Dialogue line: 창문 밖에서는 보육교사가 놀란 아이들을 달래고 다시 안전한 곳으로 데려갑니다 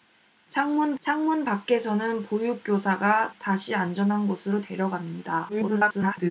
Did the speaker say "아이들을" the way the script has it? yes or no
no